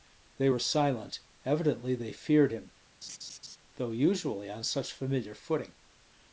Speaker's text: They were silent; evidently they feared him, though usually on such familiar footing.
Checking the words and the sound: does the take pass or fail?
fail